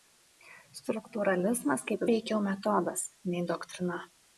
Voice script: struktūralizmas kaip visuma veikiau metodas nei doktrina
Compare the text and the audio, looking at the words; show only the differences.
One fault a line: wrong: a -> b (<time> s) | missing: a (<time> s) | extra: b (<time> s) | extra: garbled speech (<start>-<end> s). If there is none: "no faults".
missing: visuma (2.1 s)